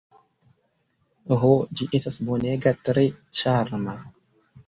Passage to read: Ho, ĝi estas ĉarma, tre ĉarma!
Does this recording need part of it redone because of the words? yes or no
yes